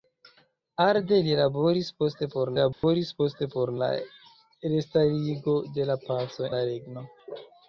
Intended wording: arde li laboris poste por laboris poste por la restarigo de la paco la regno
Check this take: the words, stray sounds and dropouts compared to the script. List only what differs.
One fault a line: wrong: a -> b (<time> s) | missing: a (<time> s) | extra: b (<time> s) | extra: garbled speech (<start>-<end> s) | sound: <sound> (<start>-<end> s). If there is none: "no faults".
sound: dropout (2.7-2.8 s)